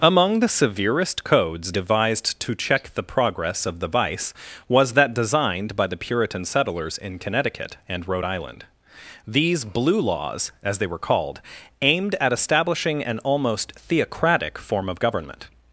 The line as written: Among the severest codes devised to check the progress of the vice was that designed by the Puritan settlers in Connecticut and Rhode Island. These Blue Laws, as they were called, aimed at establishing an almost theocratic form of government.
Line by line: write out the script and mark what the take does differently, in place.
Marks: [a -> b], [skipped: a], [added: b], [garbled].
Among the severest codes devised to check the progress of the vice was that designed by the Puritan settlers in Connecticut and Rhode Island. These Blue Laws, as they were called, aimed at establishing an almost theocratic form of government.